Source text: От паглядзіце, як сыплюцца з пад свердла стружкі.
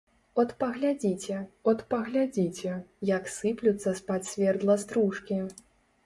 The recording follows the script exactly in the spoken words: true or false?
false